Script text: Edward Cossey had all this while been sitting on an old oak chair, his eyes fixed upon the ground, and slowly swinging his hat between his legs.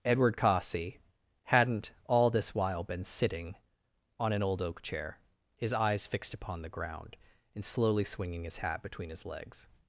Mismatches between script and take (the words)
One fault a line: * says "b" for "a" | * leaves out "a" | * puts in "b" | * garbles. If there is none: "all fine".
* says "hadn't" for "had"